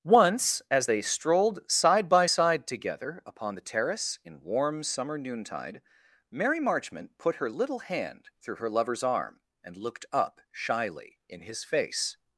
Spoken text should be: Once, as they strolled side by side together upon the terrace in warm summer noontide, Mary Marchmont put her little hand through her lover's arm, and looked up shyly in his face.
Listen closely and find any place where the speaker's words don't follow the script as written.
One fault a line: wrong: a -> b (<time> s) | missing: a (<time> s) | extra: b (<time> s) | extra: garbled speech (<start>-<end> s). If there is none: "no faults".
no faults